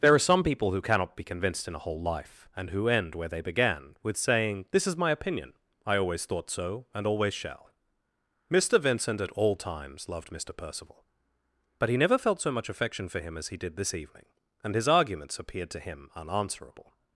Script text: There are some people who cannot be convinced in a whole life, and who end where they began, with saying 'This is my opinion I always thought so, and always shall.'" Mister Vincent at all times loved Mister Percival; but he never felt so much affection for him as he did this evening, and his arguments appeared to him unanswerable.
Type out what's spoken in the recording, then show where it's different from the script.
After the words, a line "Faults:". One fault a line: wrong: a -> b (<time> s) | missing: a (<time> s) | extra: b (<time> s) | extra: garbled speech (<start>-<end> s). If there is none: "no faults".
There are some people who cannot be convinced in a whole life, and who end where they began, with saying 'This is my opinion I always thought so, and always shall.'" Mister Vincent at all times loved Mister Percival; but he never felt so much affection for him as he did this evening, and his arguments appeared to him unanswerable.
Faults:
no faults